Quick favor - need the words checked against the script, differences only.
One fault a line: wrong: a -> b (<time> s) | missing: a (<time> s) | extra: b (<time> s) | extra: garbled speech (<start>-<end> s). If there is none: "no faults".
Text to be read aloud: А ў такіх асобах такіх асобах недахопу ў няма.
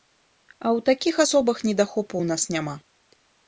missing: такіх асобах (1.6 s)
extra: нас (2.3 s)